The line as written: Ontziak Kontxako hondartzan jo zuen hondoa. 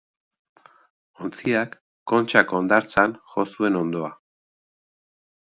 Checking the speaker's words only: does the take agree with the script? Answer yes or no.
yes